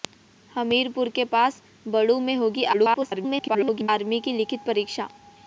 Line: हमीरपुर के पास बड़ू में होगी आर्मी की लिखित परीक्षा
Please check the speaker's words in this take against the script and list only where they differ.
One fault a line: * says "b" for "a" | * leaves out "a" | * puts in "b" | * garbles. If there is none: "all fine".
* garbles